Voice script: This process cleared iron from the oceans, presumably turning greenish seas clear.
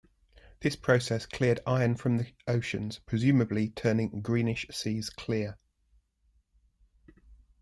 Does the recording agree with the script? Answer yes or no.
yes